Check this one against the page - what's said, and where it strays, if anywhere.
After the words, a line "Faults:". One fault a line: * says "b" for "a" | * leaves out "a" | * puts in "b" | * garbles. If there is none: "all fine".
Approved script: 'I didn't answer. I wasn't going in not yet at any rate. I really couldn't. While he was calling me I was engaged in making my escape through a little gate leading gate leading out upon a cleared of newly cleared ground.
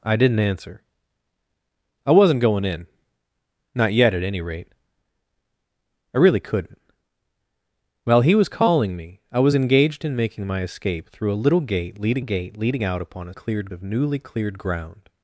'I didn't answer. I wasn't going in not yet at any rate. I really couldn't. While he was calling me I was engaged in making my escape through a little gate leading gate leading out upon a cleared of newly cleared ground.
Faults:
all fine